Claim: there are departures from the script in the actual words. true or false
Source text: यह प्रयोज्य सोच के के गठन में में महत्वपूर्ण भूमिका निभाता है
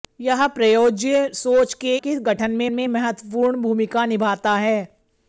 false